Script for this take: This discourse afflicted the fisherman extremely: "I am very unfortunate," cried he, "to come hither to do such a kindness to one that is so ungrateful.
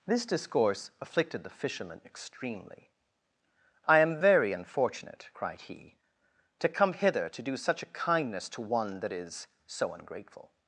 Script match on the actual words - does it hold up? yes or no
yes